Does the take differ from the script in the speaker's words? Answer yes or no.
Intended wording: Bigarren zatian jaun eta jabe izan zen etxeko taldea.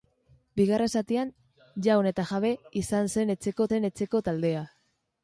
yes